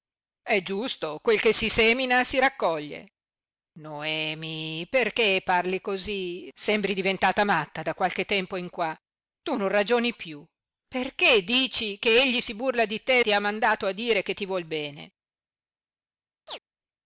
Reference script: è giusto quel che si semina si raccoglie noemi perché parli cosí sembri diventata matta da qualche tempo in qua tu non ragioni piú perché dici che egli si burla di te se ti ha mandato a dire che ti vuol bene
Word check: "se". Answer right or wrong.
wrong